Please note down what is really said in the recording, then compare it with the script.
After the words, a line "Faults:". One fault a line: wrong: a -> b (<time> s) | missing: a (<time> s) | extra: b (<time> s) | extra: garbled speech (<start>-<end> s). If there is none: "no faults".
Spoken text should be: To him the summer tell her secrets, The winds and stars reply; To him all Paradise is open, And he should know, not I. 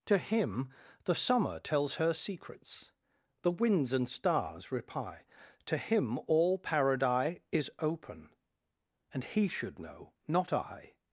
To him the summer tells her secrets, The winds and stars reply; To him all Paradise is open, And he should know, not I.
Faults:
wrong: tell -> tells (1.6 s)